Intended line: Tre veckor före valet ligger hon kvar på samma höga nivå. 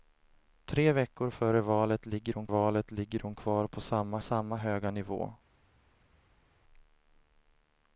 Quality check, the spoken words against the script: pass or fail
fail